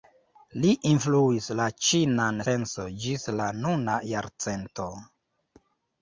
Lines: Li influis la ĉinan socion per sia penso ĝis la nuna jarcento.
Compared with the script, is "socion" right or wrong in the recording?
wrong